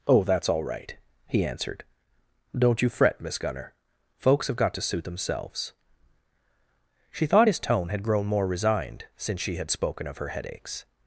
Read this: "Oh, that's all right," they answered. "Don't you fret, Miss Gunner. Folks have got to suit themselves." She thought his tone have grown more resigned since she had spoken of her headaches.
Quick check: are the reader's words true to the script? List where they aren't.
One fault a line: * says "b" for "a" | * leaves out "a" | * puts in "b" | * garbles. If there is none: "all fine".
* says "he" for "they"
* says "had" for "have"